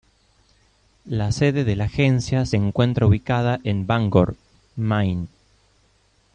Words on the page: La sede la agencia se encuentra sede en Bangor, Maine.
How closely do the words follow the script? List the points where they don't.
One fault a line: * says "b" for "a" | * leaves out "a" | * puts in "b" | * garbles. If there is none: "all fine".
* puts in "de"
* says "ubicada" for "sede"